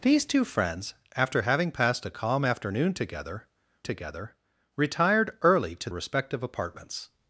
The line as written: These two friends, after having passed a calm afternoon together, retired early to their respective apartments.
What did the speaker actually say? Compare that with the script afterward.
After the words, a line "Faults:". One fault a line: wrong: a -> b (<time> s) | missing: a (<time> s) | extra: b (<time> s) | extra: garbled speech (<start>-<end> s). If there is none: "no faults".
These two friends, after having passed a calm afternoon together together, retired early to respective apartments.
Faults:
extra: together (3.8 s)
missing: their (5.9 s)